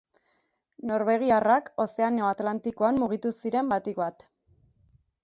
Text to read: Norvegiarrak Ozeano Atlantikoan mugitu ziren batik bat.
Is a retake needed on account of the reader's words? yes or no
no